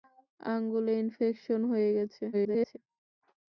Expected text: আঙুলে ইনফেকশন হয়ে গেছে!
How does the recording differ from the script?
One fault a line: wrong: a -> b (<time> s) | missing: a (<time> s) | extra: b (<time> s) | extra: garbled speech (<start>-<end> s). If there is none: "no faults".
extra: garbled speech (2.3-2.8 s)